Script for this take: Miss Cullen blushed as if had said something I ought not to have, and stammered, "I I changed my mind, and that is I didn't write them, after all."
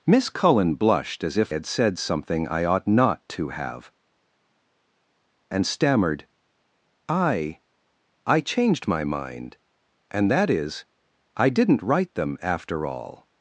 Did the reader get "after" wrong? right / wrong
right